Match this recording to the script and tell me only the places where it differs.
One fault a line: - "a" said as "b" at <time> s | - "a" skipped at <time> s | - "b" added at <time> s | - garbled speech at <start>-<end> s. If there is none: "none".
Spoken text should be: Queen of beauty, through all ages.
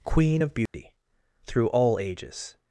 none